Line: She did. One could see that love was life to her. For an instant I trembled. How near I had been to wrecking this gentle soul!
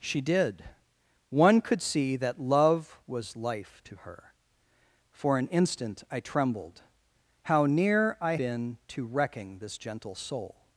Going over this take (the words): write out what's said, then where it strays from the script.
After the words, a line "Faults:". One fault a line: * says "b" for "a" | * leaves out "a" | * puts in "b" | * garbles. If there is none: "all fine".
She did. One could see that love was life to her. For an instant I trembled. How near I been to wrecking this gentle soul!
Faults:
* leaves out "had"